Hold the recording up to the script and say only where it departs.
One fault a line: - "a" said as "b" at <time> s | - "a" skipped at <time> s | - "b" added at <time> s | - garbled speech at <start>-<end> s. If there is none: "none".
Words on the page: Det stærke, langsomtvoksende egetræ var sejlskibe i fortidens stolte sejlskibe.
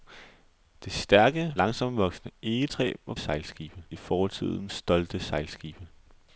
none